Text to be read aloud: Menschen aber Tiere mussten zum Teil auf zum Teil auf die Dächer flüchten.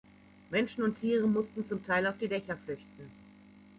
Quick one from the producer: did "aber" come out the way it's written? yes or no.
no